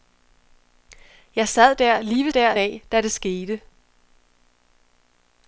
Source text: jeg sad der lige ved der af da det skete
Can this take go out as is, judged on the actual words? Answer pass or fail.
pass